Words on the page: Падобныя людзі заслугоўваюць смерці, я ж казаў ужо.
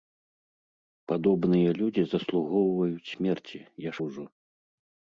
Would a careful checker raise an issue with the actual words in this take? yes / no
yes